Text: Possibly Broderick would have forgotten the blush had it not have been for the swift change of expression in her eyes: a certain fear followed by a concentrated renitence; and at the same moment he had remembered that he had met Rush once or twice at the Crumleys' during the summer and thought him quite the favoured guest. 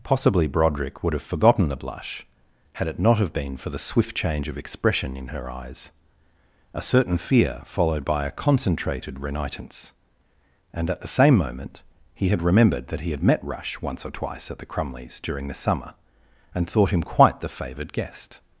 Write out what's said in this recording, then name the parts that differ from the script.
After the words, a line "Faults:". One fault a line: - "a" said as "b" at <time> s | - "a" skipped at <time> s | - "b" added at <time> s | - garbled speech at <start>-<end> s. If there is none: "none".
Possibly Broderick would have forgotten the blush had it not have been for the swift change of expression in her eyes: a certain fear followed by a concentrated renitence; and at the same moment he had remembered that he had met Rush once or twice at the Crumleys' during the summer and thought him quite the favoured guest.
Faults:
none